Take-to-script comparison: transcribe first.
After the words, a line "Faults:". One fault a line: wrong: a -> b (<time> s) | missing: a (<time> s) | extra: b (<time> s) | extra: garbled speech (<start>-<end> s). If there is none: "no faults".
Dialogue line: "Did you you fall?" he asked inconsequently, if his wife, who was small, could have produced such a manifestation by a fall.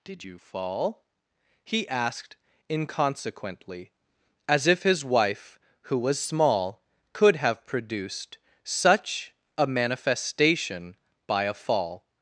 "Did you fall?" he asked inconsequently, as if his wife, who was small, could have produced such a manifestation by a fall.
Faults:
missing: you (0.4 s)
extra: as (4.5 s)